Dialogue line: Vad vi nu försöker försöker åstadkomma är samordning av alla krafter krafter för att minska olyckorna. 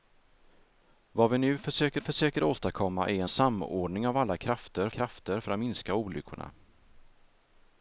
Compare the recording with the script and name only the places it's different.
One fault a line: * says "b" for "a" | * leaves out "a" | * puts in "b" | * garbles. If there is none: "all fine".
all fine